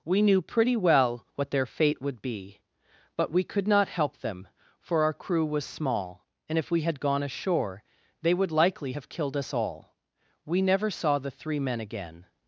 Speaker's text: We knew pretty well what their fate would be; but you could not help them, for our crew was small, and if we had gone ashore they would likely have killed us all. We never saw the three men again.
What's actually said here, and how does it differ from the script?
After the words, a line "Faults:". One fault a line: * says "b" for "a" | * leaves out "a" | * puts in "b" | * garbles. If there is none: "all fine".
We knew pretty well what their fate would be; but we could not help them, for our crew was small, and if we had gone ashore they would likely have killed us all. We never saw the three men again.
Faults:
* says "we" for "you"